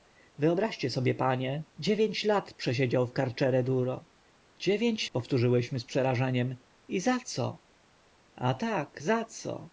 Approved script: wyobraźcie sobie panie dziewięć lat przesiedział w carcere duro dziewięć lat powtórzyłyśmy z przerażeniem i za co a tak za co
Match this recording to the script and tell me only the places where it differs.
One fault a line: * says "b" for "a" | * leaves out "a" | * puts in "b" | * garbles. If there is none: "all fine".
* leaves out "lat"